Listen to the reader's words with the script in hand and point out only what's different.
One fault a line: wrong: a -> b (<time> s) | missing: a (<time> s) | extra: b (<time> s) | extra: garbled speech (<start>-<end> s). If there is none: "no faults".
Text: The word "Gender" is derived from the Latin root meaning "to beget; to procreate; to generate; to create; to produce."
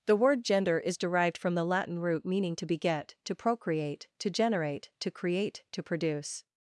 no faults